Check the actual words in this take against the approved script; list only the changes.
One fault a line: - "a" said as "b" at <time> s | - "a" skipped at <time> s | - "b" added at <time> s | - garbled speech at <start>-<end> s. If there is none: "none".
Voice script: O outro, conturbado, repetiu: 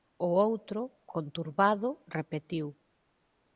none